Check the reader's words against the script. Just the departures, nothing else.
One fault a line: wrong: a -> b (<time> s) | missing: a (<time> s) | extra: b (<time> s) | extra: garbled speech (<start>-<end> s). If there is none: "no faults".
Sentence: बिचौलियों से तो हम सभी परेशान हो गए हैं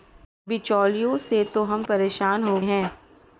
missing: सभी (1.8 s)
missing: गए (2.6 s)